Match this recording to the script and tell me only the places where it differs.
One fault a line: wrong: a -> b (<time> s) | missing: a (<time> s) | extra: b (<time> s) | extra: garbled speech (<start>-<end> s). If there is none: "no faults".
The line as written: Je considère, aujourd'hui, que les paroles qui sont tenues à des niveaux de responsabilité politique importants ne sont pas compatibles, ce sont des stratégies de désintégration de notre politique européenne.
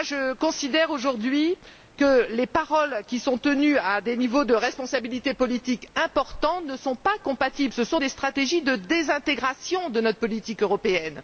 no faults